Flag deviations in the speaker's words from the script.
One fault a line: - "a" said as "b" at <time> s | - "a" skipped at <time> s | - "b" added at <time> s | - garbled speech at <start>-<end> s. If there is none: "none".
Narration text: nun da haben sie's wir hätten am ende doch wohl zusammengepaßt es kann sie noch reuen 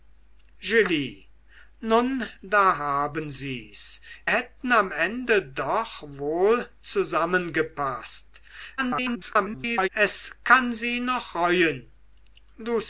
- "wir" skipped at 4.0 s
- garbled speech at 8.8-9.9 s